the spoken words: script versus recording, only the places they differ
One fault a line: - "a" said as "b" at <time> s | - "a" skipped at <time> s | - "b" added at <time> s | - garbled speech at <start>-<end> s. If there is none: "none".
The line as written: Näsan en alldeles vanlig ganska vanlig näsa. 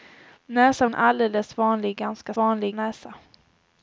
none